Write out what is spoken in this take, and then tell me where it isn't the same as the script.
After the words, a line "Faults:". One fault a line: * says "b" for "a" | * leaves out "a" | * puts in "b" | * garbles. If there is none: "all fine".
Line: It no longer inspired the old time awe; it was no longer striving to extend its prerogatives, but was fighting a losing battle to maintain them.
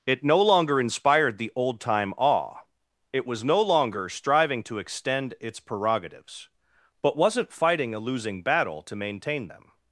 It no longer inspired the old time awe; it was no longer striving to extend its prerogatives, but wasn't fighting a losing battle to maintain them.
Faults:
* says "wasn't" for "was"